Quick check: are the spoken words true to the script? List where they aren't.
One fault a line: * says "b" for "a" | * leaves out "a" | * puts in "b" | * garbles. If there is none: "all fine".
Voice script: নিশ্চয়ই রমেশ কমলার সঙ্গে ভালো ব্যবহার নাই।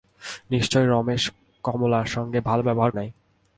all fine